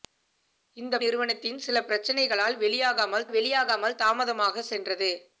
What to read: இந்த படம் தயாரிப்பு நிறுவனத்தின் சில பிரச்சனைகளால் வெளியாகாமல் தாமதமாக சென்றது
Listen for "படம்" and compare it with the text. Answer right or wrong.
wrong